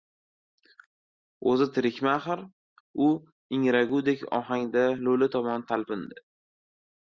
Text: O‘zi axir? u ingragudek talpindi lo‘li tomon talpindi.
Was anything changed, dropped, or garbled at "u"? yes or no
no